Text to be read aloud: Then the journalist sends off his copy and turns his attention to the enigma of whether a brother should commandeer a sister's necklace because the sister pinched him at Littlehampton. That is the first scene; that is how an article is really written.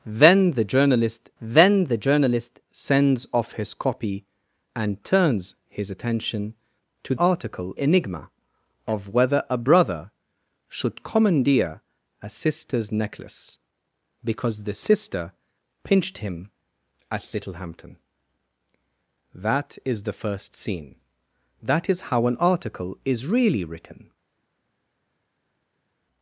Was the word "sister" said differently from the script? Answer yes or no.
no